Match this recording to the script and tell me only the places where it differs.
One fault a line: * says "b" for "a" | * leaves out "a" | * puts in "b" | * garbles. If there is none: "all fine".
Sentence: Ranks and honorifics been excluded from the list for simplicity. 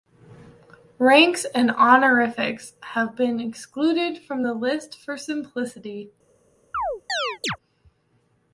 * puts in "have"